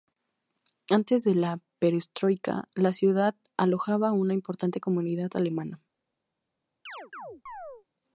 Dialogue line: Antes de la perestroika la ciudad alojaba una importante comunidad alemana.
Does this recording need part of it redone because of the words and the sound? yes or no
yes